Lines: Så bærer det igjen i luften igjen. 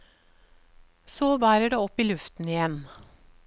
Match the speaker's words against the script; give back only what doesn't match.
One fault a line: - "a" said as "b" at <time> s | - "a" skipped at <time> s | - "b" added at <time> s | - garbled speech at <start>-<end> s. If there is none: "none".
- "igjen" said as "opp" at 1.8 s